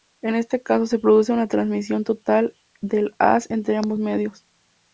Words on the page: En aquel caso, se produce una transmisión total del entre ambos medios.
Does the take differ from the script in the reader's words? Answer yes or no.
yes